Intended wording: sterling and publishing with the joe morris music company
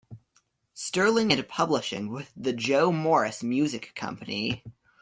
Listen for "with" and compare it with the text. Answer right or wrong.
right